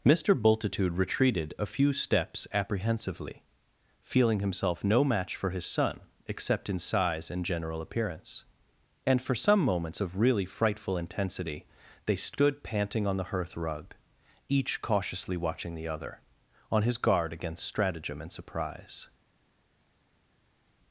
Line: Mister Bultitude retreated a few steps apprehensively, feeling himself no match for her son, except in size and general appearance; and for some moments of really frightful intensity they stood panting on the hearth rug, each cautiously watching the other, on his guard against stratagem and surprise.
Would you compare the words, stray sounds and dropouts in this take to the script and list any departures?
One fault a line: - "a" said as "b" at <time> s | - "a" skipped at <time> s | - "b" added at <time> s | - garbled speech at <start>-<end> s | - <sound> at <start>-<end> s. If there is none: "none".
- "her" said as "his" at 5.5 s